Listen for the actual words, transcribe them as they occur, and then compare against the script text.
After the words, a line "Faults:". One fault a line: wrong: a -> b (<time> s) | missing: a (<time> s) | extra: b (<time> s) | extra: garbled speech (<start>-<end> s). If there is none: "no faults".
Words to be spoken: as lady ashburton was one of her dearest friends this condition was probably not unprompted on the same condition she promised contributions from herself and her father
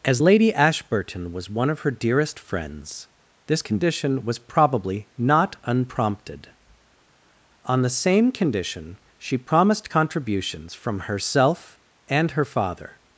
as lady ashburton was one of her dearest friends this condition was probably not unprompted on the same condition she promised contributions from herself and her father
Faults:
no faults